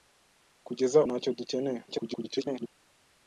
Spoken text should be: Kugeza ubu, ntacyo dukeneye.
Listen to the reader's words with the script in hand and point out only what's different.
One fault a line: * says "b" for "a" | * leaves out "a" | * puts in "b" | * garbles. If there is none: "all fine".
* leaves out "ubu"
* garbles